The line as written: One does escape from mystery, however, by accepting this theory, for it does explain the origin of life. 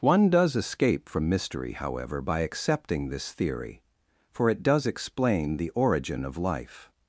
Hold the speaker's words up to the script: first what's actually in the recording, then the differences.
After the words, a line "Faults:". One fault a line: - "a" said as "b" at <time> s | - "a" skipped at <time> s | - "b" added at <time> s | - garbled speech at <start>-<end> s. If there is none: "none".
One does escape from mystery, however, by accepting this theory, for it does explain the origin of life.
Faults:
none